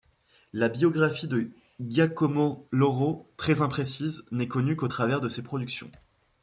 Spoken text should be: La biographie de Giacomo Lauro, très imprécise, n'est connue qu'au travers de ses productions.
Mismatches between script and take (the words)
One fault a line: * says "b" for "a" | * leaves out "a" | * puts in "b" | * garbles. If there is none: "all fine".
all fine